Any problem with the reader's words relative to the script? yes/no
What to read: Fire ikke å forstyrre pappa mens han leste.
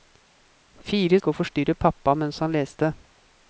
no